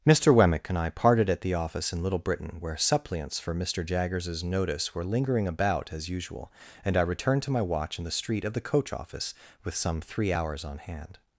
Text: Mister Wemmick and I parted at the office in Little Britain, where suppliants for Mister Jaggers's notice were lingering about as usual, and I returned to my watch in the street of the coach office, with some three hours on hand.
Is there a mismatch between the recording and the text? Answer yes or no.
no